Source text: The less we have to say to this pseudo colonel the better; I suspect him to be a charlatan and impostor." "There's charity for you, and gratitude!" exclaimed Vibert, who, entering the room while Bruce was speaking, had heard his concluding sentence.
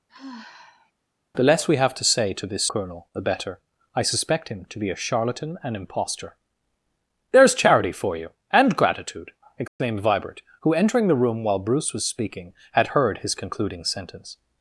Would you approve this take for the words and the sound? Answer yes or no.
no